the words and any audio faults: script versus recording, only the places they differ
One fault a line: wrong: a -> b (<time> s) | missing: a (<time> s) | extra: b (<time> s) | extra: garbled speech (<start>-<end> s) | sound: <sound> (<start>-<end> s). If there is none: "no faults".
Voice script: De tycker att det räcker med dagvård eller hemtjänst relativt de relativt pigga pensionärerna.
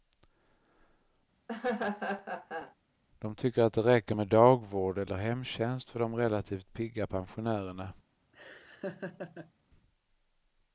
sound: laugh (1.5-2.7 s)
wrong: relativt -> för (5.9 s)
sound: laugh (8.3-9.5 s)